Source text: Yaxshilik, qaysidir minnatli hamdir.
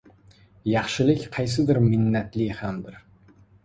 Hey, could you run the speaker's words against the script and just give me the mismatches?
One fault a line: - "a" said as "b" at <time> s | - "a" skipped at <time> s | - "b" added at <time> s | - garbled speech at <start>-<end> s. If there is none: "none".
none